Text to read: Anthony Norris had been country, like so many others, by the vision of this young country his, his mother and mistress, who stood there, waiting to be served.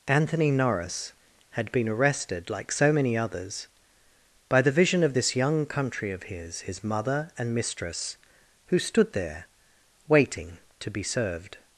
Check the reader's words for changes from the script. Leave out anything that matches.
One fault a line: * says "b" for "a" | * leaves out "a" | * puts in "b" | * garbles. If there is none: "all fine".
* says "arrested" for "country"
* puts in "of"